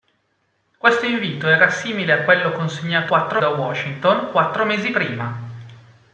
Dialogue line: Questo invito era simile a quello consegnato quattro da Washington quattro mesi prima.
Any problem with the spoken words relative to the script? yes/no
no